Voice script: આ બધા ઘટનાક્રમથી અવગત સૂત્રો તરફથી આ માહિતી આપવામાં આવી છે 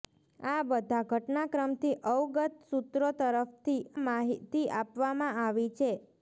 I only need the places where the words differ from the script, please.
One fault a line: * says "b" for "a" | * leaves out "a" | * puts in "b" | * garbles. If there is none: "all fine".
* leaves out "આ"